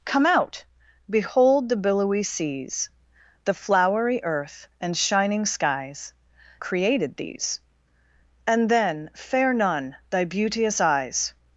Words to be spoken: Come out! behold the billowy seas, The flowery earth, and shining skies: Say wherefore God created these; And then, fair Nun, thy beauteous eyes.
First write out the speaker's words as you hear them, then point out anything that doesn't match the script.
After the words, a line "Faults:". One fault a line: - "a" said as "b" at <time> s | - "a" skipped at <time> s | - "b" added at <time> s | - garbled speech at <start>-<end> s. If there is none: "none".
Come out! behold the billowy seas, The flowery earth, and shining skies: Created these; And then, fair Nun, thy beauteous eyes.
Faults:
- "Say wherefore God" skipped at 6.1 s